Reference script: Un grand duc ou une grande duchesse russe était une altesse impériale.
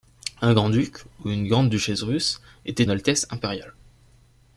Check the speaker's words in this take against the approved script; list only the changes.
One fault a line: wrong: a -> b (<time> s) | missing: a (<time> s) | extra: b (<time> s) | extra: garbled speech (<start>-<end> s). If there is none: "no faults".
missing: une (2.8 s)